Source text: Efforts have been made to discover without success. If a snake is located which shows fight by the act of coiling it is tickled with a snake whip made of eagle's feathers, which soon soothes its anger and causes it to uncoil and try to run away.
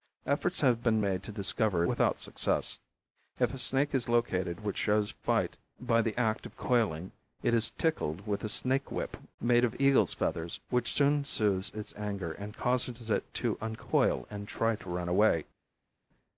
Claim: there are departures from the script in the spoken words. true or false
false